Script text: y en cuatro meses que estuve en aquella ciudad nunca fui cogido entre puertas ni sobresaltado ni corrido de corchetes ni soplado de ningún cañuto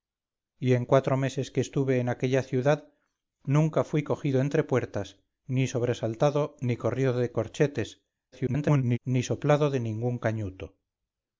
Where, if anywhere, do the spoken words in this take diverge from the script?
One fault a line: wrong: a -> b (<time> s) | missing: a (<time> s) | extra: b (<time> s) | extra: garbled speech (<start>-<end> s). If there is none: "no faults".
extra: garbled speech (8.3-9.0 s)